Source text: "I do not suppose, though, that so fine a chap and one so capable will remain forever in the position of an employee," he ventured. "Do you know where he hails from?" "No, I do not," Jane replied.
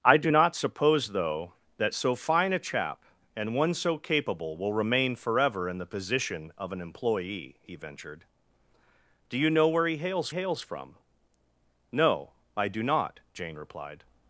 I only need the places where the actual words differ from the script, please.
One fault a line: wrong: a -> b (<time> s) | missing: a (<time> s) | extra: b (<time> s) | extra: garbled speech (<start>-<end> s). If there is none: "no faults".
extra: hails (10.3 s)